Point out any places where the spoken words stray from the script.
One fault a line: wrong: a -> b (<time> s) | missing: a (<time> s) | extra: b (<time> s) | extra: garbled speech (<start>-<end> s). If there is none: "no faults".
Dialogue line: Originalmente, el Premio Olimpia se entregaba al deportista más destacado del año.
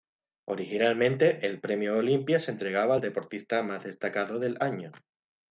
no faults